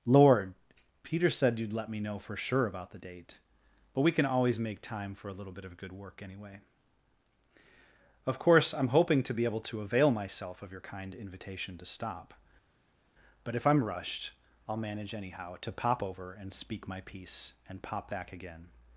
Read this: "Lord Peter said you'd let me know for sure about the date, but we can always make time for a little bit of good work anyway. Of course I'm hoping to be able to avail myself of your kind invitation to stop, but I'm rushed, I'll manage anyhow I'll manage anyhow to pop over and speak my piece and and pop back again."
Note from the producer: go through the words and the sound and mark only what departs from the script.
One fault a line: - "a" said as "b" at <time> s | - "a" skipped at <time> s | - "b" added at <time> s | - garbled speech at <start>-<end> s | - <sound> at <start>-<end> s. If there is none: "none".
- "if" added at 13.5 s
- "I'll manage anyhow" skipped at 15.6 s
- "and" skipped at 17.8 s